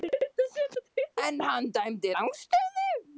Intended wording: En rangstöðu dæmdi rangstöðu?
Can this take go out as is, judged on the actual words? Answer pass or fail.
fail